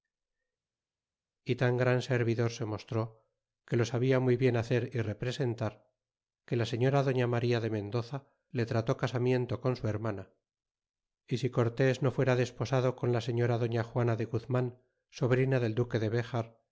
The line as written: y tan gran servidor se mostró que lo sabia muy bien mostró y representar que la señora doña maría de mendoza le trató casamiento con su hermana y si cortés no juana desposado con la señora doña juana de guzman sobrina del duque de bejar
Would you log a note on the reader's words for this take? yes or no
yes